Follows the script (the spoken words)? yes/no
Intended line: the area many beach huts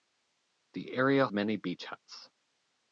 yes